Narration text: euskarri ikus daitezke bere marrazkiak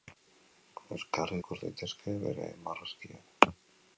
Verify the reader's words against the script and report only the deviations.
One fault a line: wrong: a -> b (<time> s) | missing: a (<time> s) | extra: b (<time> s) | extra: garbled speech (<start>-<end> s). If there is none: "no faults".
no faults